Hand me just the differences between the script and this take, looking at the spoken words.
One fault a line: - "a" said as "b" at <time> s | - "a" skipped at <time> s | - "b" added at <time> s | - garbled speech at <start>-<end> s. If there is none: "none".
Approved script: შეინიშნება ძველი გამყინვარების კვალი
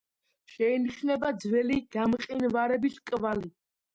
none